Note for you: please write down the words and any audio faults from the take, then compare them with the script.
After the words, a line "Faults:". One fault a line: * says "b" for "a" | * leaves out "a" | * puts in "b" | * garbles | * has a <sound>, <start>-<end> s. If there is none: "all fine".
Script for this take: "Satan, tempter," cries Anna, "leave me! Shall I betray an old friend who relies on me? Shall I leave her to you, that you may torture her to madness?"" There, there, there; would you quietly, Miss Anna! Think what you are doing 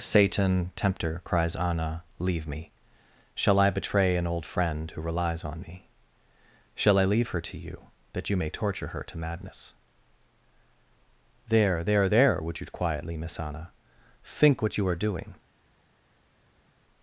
"Satan, tempter," cries Anna, "leave me! Shall I betray an old friend who relies on me? Shall I leave her to you, that you may torture her to madness?"" There, there, there; would you quietly, Miss Anna! Think what you are doing
Faults:
all fine